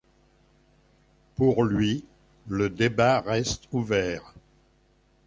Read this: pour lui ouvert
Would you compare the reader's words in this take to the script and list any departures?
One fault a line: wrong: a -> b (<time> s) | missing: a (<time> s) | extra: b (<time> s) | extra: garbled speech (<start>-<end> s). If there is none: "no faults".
extra: le débat reste (2.5 s)